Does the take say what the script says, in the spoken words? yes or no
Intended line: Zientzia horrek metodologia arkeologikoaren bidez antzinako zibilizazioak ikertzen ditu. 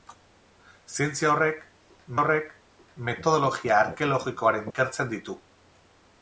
no